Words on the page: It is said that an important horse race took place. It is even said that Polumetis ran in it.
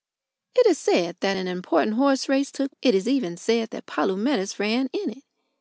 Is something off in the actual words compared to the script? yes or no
yes